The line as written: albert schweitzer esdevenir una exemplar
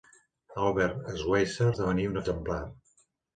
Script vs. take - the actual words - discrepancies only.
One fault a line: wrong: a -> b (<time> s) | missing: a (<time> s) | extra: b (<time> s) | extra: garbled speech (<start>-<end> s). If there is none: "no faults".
no faults